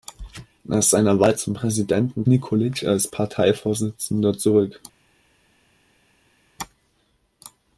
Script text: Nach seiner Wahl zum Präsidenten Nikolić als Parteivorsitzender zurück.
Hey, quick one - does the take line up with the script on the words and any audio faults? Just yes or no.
yes